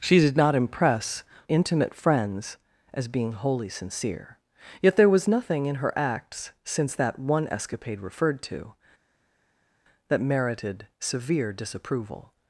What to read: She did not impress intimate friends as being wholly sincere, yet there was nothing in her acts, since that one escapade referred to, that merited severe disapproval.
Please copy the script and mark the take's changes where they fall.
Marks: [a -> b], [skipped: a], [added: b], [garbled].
She did not impress intimate friends as being wholly sincere, yet there was nothing in her acts, since that one escapade referred to, that merited severe disapproval.